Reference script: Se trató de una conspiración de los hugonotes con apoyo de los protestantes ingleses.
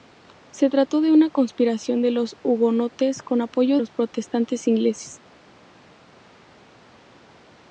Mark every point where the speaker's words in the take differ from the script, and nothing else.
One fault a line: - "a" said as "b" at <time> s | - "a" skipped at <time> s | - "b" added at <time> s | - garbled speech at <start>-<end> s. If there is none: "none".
- "de" skipped at 3.8 s